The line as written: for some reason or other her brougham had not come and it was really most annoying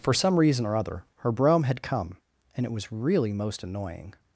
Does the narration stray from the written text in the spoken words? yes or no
yes